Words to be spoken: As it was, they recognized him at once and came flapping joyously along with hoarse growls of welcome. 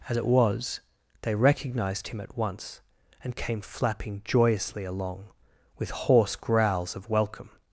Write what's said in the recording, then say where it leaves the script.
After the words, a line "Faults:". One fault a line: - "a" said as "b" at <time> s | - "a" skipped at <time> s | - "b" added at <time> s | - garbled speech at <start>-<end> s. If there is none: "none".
As it was, they recognized him at once and came flapping joyously along with hoarse growls of welcome.
Faults:
none